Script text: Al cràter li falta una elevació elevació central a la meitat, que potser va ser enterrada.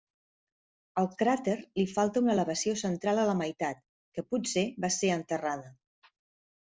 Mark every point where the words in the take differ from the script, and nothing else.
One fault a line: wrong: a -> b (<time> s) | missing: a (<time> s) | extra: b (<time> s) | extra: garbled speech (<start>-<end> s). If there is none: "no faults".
missing: elevació (2.8 s)